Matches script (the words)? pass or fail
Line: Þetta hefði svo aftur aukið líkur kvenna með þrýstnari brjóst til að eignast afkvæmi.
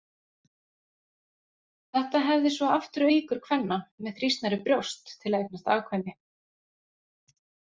fail